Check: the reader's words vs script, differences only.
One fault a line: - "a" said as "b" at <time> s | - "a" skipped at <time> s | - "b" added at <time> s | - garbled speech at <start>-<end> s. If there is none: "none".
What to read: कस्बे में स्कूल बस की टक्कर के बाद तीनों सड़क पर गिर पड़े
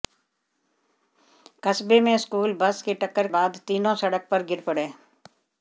- "के" skipped at 3.3 s